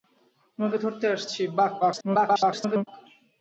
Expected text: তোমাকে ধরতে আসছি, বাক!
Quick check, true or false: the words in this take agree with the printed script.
false